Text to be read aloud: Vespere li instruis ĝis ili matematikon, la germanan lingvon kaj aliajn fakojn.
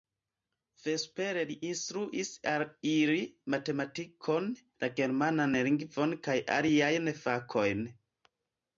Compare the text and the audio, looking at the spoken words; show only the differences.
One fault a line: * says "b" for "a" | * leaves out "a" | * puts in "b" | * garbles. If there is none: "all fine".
* says "al" for "ĝis"